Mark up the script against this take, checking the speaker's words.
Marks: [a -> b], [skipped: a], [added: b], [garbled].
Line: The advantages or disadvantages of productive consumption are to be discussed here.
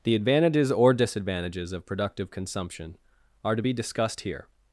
The advantages or disadvantages of productive consumption are to be discussed here.